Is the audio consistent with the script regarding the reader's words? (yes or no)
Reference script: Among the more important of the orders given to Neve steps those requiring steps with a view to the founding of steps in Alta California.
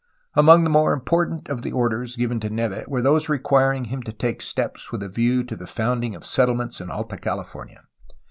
no